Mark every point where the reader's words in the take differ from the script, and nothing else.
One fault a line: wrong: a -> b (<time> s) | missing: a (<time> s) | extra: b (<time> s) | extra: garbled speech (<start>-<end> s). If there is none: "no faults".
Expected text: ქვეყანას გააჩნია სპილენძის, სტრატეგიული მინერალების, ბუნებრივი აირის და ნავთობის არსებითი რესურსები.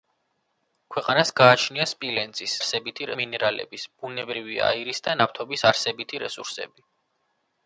wrong: სტრატეგიული -> არსებითი (2.6 s)